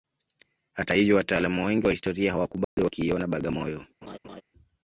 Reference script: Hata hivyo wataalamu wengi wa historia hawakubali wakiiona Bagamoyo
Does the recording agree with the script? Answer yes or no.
yes